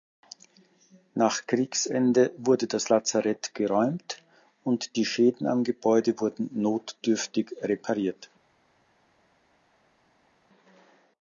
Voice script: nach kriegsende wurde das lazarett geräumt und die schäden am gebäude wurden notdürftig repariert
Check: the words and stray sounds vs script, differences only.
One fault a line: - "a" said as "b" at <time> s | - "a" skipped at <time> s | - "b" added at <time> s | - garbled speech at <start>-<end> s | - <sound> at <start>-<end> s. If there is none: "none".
none